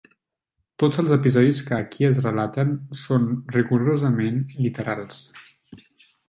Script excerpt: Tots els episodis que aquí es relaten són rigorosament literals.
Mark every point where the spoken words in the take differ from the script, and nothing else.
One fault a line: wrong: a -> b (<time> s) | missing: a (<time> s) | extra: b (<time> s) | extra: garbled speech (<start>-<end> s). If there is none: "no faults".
no faults